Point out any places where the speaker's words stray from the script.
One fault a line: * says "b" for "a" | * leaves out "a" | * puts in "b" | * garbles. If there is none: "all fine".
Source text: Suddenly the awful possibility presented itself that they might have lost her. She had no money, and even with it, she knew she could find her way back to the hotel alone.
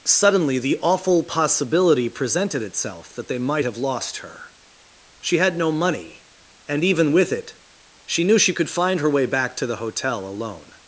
all fine